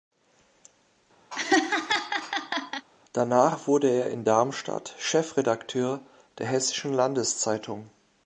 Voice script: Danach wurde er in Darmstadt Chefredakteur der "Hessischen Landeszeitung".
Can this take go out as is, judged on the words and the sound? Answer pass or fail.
fail